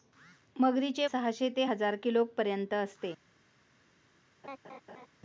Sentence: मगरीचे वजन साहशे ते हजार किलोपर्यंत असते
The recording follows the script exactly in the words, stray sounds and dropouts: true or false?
false